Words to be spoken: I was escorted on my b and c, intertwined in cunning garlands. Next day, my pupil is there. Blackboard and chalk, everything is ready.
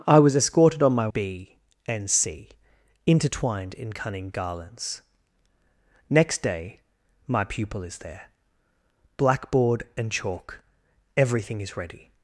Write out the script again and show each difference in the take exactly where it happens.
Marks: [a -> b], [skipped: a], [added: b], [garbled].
I was escorted on my b and c, intertwined in cunning garlands. Next day, my pupil is there. Blackboard and chalk, everything is ready.